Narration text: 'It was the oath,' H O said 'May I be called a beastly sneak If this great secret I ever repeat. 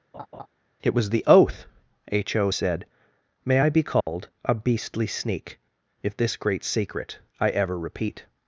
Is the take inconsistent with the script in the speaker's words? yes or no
no